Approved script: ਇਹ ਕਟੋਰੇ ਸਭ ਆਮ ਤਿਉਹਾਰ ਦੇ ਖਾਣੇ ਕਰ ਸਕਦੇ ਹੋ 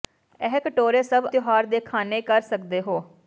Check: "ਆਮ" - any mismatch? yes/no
yes